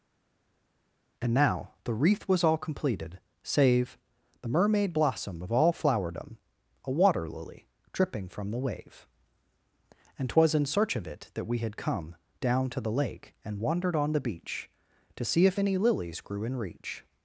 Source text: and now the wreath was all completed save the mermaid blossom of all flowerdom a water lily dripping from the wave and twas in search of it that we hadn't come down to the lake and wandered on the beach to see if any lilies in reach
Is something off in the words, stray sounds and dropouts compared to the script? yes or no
yes